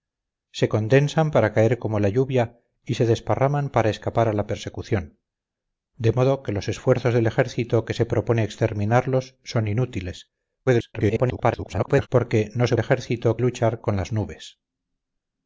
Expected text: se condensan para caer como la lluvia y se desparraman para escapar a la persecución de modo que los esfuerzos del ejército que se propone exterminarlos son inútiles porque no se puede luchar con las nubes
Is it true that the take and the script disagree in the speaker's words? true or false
true